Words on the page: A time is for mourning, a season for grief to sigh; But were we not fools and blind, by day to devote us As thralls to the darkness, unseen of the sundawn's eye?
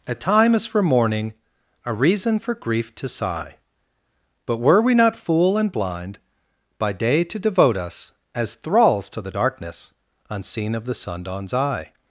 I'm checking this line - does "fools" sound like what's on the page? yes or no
no